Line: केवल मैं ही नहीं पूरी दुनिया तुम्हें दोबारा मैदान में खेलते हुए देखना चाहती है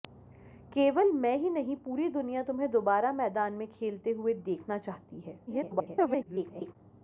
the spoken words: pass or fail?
fail